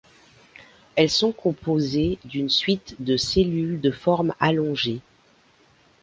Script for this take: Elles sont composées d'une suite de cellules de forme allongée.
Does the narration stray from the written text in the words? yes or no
no